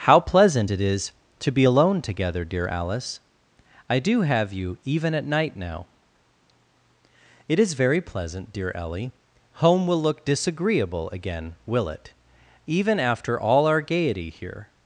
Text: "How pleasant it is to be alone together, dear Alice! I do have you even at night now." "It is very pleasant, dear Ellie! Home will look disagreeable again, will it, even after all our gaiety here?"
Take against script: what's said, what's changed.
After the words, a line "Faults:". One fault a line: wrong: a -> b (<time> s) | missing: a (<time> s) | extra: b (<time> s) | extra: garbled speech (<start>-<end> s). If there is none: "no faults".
"How pleasant it is to be alone together, dear Alice! I do have you even at night now." "It is very pleasant, dear Ellie! Home will look disagreeable again, will it, even after all our gaiety here?"
Faults:
no faults